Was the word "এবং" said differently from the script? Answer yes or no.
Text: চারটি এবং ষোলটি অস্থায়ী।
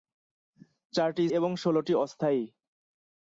no